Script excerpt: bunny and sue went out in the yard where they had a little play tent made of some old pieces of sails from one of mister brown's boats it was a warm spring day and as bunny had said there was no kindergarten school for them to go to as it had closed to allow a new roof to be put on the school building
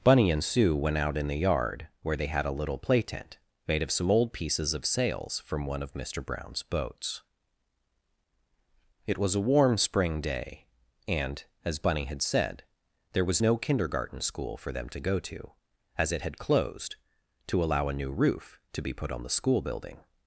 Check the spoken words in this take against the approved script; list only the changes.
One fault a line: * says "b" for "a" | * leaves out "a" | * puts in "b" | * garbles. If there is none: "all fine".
all fine